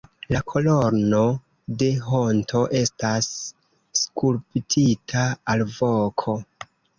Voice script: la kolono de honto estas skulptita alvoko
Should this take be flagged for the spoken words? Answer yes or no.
no